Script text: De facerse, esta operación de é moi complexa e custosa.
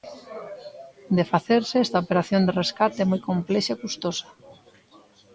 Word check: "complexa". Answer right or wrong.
right